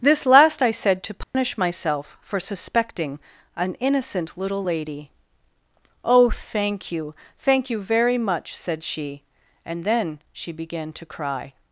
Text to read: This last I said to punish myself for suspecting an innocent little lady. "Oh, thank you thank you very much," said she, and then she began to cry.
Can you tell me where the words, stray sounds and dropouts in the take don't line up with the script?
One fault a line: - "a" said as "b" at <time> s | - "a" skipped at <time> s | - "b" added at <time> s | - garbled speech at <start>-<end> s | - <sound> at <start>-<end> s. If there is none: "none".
- dropout at 1.2-1.3 s